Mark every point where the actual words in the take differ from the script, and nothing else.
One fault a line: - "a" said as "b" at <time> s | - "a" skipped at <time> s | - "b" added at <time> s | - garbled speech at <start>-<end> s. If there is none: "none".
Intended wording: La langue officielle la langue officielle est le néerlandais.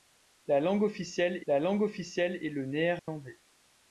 none